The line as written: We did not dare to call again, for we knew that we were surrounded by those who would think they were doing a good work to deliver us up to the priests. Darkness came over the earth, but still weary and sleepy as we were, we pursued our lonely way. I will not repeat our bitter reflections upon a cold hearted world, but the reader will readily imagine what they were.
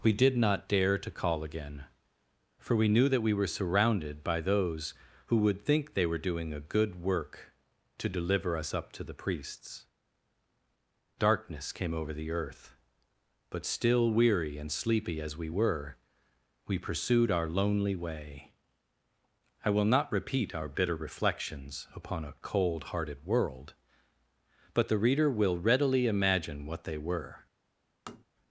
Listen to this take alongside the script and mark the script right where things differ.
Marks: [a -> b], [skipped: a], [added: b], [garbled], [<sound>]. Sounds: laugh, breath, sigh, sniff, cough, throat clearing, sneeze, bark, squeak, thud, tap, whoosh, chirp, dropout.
We did not dare to call again, for we knew that we were surrounded by those who would think they were doing a good work to deliver us up to the priests. Darkness came over the earth, but still weary and sleepy as we were, we pursued our lonely way. I will not repeat our bitter reflections upon a cold hearted world, but the reader will readily imagine what they were. [tap]